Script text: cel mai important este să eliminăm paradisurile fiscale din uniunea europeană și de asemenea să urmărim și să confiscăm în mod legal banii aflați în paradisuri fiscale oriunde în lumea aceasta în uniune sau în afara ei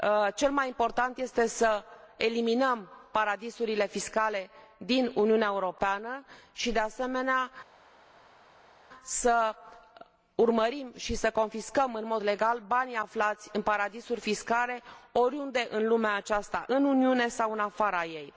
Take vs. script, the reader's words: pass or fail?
pass